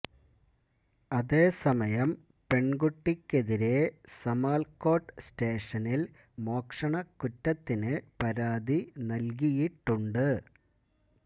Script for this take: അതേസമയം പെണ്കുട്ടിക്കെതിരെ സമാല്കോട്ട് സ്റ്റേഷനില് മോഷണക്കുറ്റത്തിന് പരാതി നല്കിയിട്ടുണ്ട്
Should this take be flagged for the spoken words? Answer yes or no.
no